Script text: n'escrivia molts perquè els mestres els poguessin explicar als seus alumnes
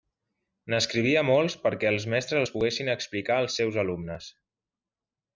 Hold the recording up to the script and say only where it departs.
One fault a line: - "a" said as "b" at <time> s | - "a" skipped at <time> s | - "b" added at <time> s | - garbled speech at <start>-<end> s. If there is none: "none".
none